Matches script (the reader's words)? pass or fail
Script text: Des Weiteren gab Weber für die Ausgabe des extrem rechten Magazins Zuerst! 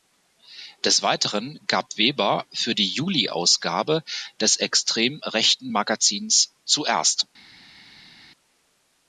fail